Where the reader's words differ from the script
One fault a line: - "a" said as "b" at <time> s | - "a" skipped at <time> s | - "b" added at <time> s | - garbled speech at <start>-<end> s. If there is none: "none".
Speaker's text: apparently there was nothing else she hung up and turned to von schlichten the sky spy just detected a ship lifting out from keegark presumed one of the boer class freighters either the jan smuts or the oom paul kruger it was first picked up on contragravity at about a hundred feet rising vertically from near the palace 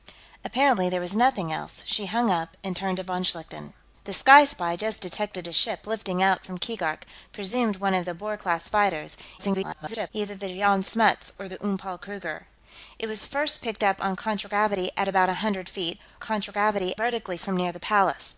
- garbled speech at 9.4-10.1 s
- "rising" said as "contragravity" at 16.2 s